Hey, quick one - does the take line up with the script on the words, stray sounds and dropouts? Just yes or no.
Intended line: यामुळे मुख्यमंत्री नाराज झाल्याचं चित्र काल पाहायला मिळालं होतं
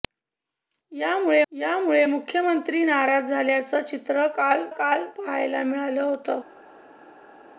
no